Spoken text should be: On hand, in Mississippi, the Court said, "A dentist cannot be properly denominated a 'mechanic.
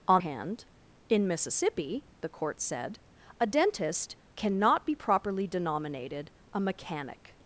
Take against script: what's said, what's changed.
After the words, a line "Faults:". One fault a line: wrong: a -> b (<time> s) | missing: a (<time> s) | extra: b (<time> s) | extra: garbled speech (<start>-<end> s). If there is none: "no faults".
On hand, in Mississippi, the Court said, "A dentist cannot be properly denominated a 'mechanic.
Faults:
no faults